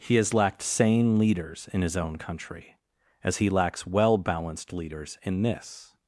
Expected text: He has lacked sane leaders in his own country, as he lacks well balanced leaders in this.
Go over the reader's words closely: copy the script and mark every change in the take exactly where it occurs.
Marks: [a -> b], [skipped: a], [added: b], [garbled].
He has lacked sane leaders in his own country, as he lacks well balanced leaders in this.